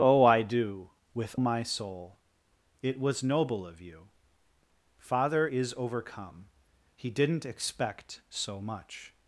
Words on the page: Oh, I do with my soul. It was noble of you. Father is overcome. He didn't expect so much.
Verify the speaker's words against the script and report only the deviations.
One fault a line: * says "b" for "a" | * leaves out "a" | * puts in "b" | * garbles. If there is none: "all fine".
all fine